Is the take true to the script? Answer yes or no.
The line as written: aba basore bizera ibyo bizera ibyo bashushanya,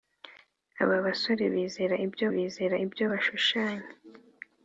yes